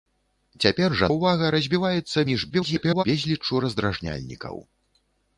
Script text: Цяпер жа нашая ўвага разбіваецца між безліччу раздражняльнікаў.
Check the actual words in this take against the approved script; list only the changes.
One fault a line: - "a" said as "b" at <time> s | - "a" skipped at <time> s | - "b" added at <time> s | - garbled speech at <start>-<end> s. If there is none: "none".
- "нашая" skipped at 1.1 s
- garbled speech at 2.5-3.0 s